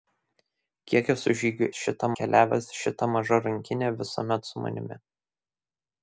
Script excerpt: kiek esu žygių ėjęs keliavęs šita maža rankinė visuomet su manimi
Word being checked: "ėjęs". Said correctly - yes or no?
no